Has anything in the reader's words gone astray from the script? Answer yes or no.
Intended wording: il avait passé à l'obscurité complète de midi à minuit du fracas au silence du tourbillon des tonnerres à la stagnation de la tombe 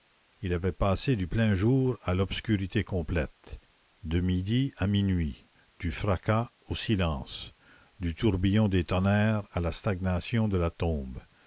yes